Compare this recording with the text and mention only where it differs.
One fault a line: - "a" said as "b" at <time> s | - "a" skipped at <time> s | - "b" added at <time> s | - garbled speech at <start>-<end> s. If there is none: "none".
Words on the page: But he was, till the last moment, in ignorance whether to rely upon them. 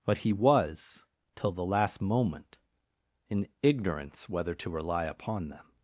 none